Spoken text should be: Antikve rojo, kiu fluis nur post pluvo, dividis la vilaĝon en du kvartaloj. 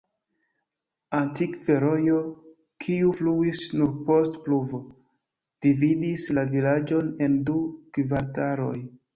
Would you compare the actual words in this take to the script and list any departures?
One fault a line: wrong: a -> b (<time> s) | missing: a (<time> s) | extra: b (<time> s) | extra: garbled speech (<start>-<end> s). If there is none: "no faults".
no faults